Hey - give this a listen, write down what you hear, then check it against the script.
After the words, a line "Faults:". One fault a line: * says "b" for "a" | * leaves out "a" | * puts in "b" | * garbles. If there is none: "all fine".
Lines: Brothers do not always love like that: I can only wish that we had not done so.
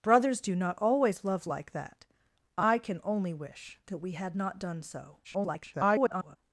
Brothers do not always love like that: I can only wish that we had not done so. [garbled]
Faults:
* garbles